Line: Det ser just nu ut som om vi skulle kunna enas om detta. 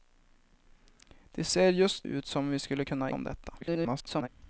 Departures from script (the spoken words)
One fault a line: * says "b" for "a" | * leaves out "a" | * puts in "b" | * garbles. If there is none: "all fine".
* leaves out "nu"
* leaves out "enas"
* garbles